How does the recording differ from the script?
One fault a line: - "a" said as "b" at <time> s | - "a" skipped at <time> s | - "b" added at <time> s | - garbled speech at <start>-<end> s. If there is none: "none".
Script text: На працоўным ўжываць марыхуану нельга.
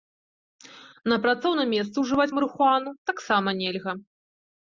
- "месцы" added at 1.8 s
- "таксама" added at 3.1 s